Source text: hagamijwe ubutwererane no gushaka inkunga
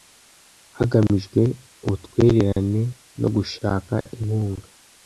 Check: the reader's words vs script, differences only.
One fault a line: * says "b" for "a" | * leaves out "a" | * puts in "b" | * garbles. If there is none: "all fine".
all fine